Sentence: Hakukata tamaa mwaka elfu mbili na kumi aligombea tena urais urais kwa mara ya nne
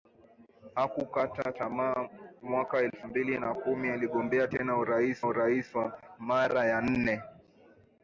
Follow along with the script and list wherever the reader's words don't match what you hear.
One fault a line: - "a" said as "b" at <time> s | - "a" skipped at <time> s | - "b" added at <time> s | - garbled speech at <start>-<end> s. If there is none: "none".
none